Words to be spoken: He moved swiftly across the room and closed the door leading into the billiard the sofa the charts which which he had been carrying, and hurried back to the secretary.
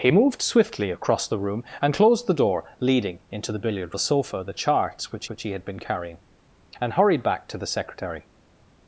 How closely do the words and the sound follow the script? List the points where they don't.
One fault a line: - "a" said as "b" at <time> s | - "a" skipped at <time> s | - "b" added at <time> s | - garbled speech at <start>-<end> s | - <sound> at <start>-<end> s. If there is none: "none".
none